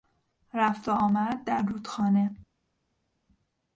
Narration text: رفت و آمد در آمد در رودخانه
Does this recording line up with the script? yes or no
no